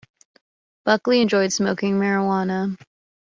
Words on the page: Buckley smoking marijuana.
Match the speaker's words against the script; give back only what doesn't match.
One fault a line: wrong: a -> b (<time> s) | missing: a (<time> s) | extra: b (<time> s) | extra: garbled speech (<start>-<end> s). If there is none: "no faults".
extra: enjoyed (1.2 s)